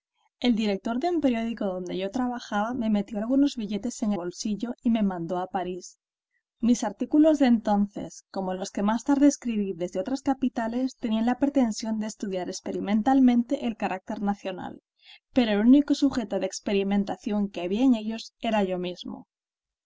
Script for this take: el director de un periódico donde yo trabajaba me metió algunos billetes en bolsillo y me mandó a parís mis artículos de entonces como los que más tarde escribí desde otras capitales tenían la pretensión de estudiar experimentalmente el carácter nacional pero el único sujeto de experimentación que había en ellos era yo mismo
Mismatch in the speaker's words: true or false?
false